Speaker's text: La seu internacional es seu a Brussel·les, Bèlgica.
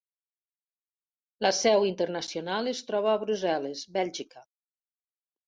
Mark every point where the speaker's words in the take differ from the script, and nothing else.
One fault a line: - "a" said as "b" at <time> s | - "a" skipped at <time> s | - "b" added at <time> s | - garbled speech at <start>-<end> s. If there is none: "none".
- "seu" said as "troba" at 2.9 s